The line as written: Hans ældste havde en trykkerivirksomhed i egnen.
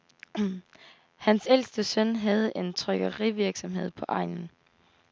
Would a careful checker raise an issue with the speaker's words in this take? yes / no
yes